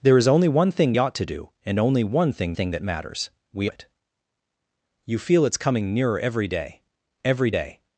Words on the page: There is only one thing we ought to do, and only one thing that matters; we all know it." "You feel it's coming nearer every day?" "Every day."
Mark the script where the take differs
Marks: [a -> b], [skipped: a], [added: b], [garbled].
There is only one thing [skipped: we] ought to do, and only one thing [added: thing] that matters; we [skipped: all know] it." "You feel it's coming nearer every day?" "Every day."